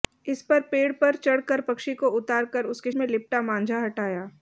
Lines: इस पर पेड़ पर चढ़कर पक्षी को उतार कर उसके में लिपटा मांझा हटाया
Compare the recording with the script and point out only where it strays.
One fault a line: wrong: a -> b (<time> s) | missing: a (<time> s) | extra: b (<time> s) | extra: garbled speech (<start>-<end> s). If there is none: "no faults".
no faults